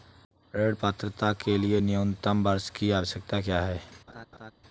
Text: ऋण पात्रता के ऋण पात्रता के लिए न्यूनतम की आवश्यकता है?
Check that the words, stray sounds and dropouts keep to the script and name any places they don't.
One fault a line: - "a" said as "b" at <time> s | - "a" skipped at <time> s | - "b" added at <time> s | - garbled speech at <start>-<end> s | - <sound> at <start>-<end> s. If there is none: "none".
- "ऋण पात्रता के" skipped at 1.6 s
- "वर्ष" added at 2.4 s
- "क्या" added at 3.4 s
- laugh at 4.1-4.5 s